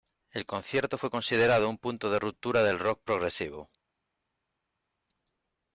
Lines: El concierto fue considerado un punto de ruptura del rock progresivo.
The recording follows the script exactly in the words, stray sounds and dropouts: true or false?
true